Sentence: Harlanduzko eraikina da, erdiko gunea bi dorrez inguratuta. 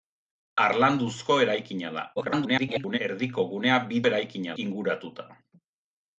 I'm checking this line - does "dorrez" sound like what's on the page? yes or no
no